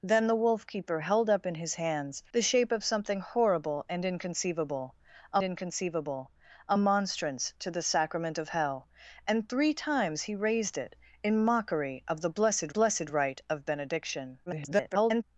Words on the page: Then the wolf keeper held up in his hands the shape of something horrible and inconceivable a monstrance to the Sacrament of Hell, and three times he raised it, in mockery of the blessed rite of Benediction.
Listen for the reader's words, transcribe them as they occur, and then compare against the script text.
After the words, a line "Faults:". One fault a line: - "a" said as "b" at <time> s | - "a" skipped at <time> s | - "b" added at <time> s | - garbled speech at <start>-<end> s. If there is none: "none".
Then the wolf keeper held up in his hands the shape of something horrible and inconceivable a inconceivable a monstrance to the Sacrament of Hell, and three times he raised it, in mockery of the blessed blessed rite of Benediction. [garbled]
Faults:
- "inconceivable a" added at 5.4 s
- "blessed" added at 12.7 s
- garbled speech at 14.5-15.2 s